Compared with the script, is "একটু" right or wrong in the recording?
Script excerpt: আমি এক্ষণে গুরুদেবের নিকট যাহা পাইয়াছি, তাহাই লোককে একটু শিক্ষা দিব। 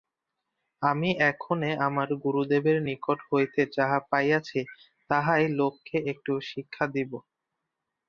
right